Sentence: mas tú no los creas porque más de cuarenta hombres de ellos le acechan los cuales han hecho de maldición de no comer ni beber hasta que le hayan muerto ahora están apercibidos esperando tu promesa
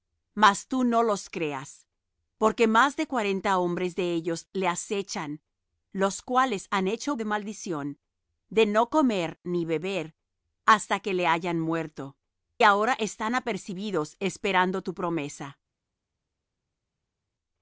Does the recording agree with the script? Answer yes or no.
yes